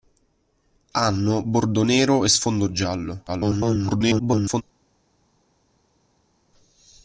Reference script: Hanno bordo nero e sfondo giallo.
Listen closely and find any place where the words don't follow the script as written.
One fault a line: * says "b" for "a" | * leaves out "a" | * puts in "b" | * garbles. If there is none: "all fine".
* garbles